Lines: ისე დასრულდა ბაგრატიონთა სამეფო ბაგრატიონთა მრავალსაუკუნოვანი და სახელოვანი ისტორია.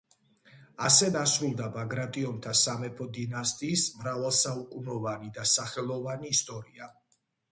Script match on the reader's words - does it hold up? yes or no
no